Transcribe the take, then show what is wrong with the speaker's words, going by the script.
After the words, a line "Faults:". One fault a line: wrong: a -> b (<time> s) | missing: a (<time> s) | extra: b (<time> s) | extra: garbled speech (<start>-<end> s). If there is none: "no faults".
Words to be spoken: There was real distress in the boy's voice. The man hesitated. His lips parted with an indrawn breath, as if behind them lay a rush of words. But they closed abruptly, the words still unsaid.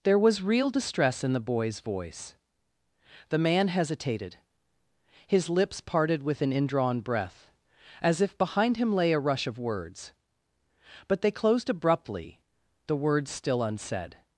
There was real distress in the boy's voice. The man hesitated. His lips parted with an indrawn breath, as if behind him lay a rush of words. But they closed abruptly, the words still unsaid.
Faults:
wrong: them -> him (8.8 s)